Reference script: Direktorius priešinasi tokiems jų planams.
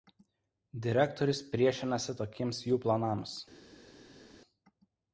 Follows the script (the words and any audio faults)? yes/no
yes